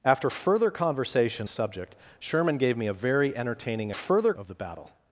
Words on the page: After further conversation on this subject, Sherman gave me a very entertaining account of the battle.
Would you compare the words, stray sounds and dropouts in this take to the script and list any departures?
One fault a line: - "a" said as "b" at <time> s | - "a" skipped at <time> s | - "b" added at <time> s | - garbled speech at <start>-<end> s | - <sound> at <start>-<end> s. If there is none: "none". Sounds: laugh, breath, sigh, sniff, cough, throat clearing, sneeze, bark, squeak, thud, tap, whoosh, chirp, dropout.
- "on this" skipped at 1.5 s
- "account" said as "further" at 3.9 s